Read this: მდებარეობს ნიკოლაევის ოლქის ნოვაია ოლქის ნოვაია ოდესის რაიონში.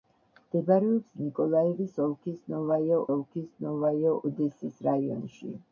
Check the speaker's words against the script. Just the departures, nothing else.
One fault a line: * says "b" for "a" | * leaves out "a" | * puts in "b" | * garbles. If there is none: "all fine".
all fine